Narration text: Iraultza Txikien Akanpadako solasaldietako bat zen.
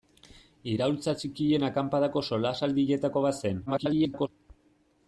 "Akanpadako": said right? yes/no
yes